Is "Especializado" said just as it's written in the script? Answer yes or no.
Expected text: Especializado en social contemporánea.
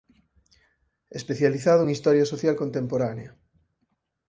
yes